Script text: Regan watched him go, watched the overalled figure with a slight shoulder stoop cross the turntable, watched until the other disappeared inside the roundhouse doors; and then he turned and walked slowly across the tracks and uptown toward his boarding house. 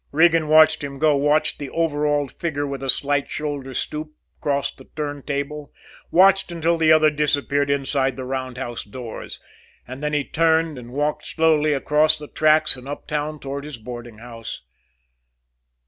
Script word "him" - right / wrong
right